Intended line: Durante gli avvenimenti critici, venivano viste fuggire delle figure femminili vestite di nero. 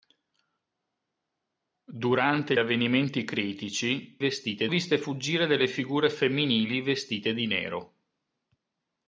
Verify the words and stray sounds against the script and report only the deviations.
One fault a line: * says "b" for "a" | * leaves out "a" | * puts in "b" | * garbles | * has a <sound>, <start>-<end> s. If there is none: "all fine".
* leaves out "gli"
* says "vestite" for "venivano"